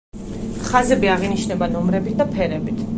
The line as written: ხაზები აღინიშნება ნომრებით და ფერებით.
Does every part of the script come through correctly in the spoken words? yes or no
yes